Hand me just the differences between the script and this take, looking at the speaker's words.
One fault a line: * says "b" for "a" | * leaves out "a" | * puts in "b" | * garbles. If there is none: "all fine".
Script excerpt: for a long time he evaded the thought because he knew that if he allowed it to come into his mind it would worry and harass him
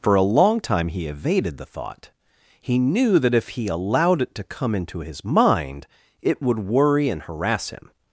* leaves out "because"